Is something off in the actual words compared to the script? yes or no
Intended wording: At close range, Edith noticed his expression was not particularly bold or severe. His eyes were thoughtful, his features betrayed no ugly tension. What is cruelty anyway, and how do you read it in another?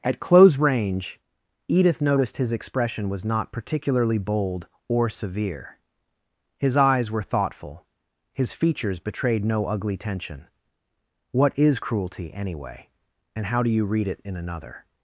no